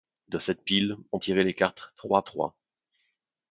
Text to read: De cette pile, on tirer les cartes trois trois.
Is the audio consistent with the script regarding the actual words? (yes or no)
yes